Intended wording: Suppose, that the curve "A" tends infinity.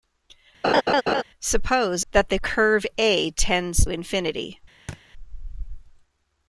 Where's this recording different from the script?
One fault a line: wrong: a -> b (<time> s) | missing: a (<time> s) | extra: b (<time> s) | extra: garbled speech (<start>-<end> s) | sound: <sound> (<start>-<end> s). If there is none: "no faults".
sound: laugh (0.6-1.2 s)
sound: thud (4.9-5.0 s)